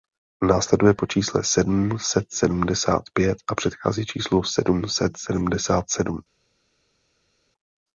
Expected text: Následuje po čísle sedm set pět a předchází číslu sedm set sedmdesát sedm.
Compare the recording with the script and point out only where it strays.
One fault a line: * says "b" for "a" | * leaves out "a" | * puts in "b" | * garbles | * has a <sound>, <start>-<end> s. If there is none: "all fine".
* puts in "sedmdesát"